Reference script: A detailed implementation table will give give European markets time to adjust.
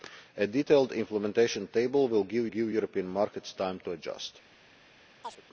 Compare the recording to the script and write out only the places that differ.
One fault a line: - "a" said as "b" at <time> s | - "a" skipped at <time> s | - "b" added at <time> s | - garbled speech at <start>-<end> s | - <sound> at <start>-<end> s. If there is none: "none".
- chirp at 5.2-5.4 s